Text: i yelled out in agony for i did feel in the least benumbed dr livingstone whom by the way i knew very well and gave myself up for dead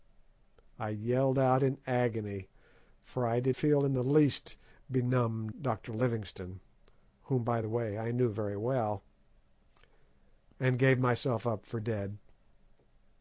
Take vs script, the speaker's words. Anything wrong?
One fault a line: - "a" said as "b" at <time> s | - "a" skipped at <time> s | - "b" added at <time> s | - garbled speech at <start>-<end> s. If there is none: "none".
none